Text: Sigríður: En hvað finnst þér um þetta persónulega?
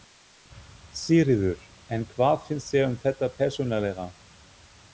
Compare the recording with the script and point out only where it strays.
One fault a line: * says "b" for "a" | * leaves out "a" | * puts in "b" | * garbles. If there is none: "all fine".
all fine